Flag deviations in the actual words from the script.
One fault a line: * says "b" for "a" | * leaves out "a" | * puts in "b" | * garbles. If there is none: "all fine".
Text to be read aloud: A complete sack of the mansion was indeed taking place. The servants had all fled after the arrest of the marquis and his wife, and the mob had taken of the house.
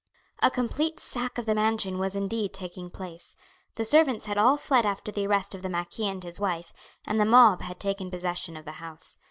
* puts in "possession"